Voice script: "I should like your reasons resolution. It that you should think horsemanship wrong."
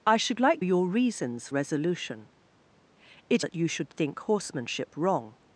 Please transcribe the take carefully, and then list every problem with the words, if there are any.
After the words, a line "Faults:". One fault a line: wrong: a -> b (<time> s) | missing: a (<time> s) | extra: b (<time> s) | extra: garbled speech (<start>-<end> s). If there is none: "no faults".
"I should like your reasons resolution. It that you should think horsemanship wrong."
Faults:
no faults